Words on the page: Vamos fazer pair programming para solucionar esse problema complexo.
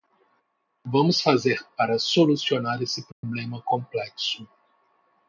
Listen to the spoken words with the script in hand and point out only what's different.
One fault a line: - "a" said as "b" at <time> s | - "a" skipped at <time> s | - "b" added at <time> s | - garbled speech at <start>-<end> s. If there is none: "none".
- "pair programming" skipped at 1.6 s